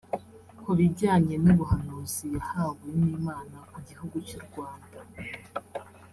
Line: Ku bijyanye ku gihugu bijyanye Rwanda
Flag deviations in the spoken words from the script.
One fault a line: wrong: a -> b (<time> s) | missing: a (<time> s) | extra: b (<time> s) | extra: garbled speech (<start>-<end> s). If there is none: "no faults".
extra: n'ubuhanuzi yahawe n'Imana (1.4 s)
wrong: bijyanye -> cy'u (4.3 s)